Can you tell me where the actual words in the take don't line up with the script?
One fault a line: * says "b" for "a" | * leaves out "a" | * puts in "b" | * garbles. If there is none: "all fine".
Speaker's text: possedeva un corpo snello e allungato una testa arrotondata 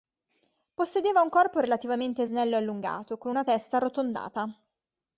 * puts in "relativamente"
* puts in "con"